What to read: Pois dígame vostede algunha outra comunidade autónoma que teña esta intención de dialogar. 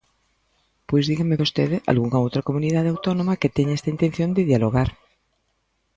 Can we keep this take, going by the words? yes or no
yes